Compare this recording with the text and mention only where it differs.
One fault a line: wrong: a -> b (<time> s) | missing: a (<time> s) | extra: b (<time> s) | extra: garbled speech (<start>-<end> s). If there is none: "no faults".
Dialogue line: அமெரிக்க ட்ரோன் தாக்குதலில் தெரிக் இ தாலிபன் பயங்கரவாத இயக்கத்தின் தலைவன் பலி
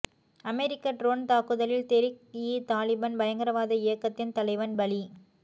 no faults